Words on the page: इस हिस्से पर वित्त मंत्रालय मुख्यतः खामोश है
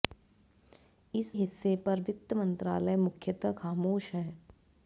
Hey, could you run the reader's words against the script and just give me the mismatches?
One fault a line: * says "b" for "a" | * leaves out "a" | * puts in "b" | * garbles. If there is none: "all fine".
all fine